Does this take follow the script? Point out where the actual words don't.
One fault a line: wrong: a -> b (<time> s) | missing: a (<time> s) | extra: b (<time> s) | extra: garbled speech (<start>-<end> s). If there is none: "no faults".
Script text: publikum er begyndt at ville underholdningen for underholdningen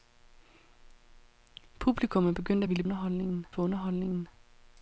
no faults